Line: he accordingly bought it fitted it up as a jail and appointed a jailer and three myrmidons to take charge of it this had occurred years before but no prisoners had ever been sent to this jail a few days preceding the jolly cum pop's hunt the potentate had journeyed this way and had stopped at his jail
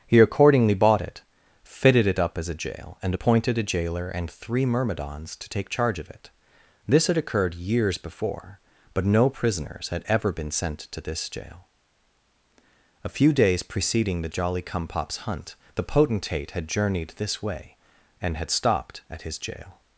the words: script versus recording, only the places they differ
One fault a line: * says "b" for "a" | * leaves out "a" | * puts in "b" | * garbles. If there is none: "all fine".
all fine